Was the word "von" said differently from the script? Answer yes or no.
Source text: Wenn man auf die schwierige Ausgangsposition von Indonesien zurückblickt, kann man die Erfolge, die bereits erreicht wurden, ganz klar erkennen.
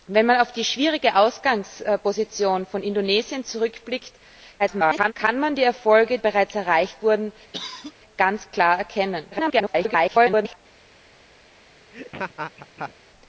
no